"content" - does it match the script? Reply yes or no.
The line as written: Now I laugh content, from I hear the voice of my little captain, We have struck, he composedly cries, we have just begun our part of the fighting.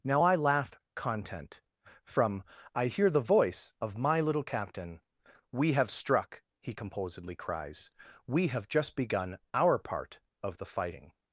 yes